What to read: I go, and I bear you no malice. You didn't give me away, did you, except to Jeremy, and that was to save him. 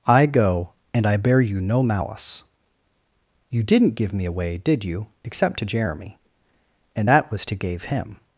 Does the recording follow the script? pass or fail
fail